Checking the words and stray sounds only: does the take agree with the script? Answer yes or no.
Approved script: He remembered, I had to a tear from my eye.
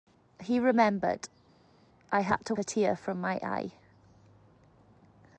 yes